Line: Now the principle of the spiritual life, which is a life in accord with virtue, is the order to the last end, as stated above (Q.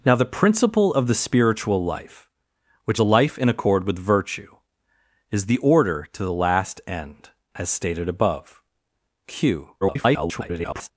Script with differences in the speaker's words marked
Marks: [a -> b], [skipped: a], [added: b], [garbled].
Now the principle of the spiritual life, which [skipped: is] a life in accord with virtue, is the order to the last end, as stated above (Q. [garbled]